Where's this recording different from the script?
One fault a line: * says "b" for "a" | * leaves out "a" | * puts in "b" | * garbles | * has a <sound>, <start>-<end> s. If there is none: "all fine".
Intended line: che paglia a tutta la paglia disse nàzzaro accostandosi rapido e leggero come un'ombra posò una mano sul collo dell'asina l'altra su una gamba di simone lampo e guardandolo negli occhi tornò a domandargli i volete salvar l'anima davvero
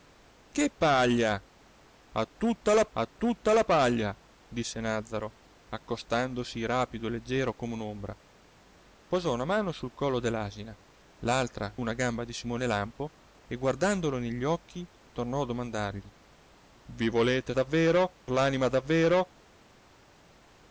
* puts in "a tutta la"
* leaves out "su"
* says "davvero" for "salvar"